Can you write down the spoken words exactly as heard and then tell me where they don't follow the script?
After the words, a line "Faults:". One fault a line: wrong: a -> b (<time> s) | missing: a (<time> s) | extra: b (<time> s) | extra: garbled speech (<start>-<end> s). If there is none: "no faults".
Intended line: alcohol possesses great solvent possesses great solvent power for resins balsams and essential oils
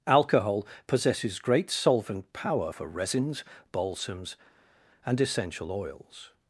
alcohol possesses great solvent power for resins balsams and essential oils
Faults:
missing: possesses great solvent (2.3 s)